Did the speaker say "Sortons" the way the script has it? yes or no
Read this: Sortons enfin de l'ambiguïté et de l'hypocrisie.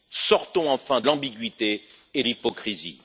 yes